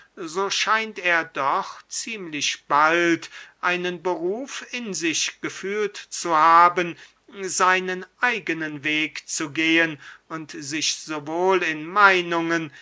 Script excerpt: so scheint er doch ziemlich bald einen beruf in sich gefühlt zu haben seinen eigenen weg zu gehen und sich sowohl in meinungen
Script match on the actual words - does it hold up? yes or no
yes